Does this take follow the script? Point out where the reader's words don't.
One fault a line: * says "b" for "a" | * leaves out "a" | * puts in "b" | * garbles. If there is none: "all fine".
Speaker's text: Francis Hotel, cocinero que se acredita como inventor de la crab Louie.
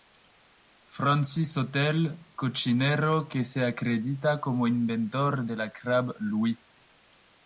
all fine